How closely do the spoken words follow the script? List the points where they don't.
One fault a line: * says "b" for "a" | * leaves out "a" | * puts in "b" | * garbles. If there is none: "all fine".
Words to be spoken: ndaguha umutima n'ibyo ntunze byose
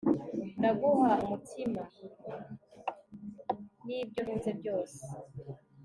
all fine